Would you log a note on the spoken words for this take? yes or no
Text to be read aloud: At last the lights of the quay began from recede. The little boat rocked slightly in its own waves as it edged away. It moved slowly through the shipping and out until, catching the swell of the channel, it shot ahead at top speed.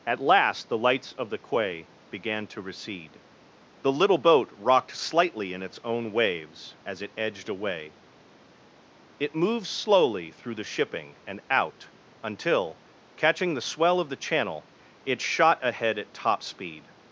yes